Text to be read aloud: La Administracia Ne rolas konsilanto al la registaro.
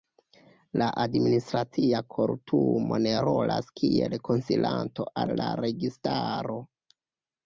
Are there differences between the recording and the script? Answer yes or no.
yes